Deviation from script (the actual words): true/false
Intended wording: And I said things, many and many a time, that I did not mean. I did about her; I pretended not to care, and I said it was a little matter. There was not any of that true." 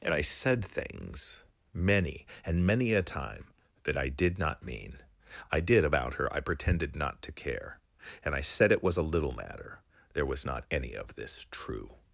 true